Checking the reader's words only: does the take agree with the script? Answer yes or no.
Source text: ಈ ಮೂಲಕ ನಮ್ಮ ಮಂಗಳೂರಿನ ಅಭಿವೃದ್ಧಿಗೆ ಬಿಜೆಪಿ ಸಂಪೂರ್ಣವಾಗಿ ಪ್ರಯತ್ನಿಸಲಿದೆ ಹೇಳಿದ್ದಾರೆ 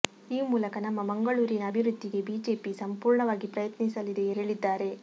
yes